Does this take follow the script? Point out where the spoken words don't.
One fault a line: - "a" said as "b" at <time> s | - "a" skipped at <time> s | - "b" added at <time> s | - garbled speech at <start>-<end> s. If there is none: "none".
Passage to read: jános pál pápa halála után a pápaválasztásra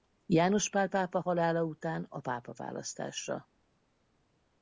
none